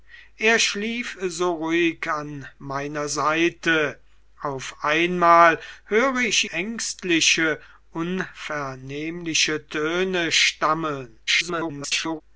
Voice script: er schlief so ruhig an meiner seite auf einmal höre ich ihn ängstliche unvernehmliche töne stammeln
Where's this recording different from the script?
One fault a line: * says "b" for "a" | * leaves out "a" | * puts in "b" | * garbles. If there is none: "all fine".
* leaves out "ihn"
* garbles